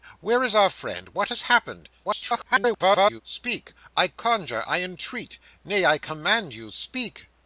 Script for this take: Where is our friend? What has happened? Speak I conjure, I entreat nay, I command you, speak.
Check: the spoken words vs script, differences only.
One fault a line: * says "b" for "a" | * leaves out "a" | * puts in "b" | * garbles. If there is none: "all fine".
* garbles